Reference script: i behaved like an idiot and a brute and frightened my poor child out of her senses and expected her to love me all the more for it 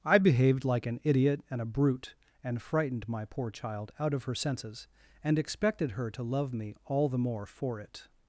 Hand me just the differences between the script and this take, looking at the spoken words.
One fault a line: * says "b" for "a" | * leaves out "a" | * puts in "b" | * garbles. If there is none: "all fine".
all fine